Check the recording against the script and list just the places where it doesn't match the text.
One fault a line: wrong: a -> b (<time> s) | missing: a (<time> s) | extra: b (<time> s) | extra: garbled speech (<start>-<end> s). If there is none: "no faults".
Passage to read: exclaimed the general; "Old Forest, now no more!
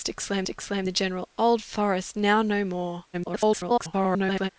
extra: exclaimed (0.5 s)
extra: garbled speech (3.1-4.5 s)